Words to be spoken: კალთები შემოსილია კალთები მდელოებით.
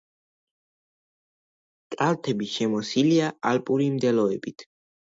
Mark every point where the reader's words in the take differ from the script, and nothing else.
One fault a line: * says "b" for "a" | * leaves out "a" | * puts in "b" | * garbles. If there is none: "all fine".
* says "ალპური" for "კალთები"